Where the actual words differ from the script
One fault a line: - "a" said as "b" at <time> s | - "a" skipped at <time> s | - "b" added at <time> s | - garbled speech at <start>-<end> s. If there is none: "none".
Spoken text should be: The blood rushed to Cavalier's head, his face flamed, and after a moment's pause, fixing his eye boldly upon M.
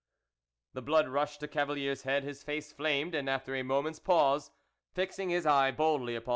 none